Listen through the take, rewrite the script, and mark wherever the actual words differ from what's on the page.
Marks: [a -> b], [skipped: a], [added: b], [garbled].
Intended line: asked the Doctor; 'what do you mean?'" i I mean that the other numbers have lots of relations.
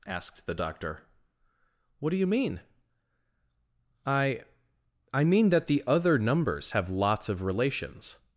asked the Doctor; 'what do you mean?'" i I mean that the other numbers have lots of relations.